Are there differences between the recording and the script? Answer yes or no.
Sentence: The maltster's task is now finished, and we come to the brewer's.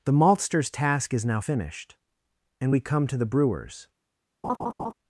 no